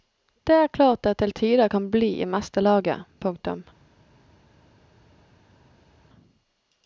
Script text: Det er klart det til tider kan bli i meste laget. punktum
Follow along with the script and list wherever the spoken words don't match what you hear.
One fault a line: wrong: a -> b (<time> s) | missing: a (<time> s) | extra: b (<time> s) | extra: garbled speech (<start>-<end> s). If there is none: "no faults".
no faults